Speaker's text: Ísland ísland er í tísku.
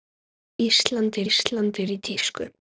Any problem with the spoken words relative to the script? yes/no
no